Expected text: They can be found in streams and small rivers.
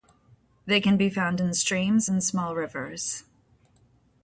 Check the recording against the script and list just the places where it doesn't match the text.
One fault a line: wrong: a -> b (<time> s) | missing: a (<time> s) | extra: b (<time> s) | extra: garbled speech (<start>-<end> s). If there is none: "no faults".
no faults